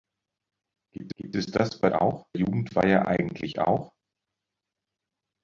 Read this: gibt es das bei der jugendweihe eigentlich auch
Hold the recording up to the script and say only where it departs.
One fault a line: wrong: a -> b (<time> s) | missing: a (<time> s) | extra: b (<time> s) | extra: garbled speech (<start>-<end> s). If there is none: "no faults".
extra: gibt (1.2 s)
wrong: der -> auch (1.9 s)